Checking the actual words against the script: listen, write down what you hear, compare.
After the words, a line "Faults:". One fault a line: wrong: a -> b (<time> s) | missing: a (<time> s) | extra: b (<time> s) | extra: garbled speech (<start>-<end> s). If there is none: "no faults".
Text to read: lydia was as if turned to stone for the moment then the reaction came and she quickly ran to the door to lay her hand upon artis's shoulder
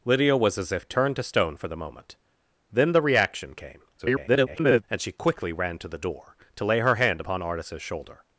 lydia was as if turned to stone for the moment then the reaction came [garbled] and she quickly ran to the door to lay her hand upon artis's shoulder
Faults:
extra: garbled speech (4.0-4.8 s)